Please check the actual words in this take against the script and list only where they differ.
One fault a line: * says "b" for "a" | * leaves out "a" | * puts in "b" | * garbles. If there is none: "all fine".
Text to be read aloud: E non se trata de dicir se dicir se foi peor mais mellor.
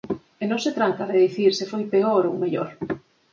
* leaves out "dicir se"
* says "ou" for "mais"